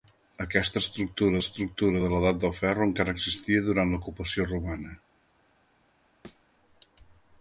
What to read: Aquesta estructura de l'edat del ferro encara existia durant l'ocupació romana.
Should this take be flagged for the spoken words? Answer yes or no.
yes